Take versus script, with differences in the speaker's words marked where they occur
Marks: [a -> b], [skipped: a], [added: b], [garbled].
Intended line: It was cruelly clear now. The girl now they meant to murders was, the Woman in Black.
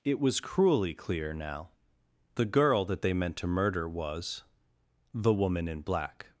It was cruelly clear now. The girl [now -> that] they meant to [murders -> murder] was, the Woman in Black.